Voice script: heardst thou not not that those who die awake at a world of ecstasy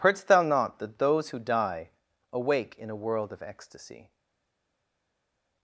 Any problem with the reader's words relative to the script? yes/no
yes